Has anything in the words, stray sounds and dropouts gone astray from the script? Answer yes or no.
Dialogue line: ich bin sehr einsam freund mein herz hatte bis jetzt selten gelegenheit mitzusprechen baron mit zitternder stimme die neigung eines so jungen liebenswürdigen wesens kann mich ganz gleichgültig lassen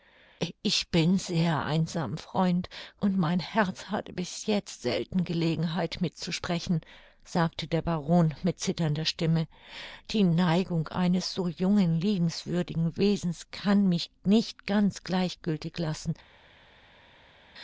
yes